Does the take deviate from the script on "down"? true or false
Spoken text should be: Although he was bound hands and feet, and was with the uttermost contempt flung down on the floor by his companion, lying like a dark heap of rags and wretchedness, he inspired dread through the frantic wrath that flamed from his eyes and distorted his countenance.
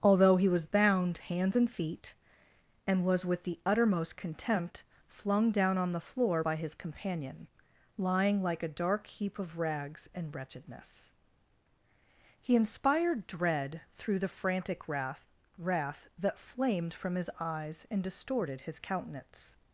false